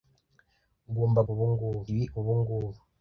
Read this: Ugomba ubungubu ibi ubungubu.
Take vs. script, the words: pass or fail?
pass